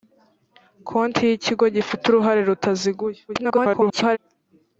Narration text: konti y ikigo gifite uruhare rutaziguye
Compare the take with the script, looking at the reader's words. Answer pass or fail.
fail